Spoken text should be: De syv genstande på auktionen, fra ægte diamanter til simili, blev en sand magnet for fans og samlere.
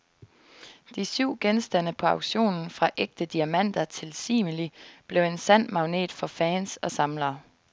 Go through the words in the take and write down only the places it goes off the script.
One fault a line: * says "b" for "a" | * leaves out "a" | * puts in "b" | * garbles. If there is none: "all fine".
all fine